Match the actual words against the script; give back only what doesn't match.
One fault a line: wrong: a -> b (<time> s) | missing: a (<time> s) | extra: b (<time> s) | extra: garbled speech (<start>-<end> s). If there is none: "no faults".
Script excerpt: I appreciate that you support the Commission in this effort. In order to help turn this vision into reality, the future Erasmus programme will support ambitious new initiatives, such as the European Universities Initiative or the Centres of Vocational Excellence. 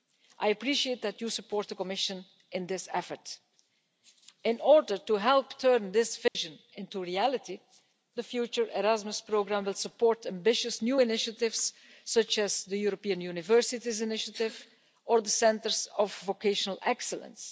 no faults